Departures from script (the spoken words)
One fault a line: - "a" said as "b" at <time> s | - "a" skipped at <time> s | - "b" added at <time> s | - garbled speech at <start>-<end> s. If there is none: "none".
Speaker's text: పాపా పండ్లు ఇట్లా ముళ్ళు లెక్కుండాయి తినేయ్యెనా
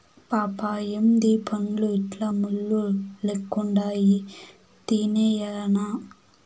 - "ఏందీ" added at 0.9 s